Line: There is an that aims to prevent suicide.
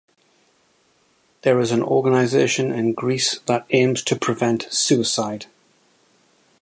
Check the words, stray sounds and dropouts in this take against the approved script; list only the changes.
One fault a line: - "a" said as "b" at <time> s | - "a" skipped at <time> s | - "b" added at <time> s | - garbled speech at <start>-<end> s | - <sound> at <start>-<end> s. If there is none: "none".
- "organization in Greece" added at 1.8 s